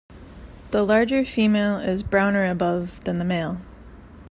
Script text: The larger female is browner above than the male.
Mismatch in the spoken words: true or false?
false